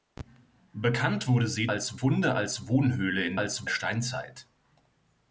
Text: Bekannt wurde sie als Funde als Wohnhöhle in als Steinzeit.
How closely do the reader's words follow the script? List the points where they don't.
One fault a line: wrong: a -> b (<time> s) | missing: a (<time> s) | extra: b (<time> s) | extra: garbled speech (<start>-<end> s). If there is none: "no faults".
no faults